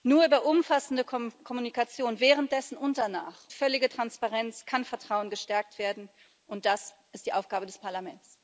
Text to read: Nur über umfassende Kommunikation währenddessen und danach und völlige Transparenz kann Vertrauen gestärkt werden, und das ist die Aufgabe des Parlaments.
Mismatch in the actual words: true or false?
true